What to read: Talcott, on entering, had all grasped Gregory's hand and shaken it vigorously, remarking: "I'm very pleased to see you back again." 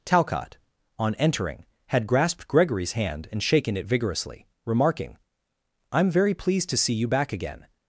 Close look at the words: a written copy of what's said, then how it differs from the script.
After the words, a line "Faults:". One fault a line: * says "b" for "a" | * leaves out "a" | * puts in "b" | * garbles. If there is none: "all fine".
Talcott, on entering, had grasped Gregory's hand and shaken it vigorously, remarking: "I'm very pleased to see you back again."
Faults:
* leaves out "all"